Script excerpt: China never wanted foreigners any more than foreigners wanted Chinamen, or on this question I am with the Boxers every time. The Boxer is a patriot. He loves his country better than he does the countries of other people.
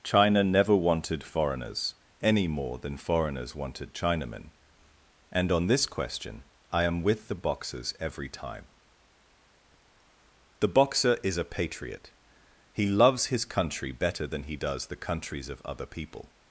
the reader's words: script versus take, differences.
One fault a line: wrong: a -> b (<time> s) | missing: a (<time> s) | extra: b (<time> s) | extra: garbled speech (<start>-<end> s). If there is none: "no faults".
wrong: or -> and (5.3 s)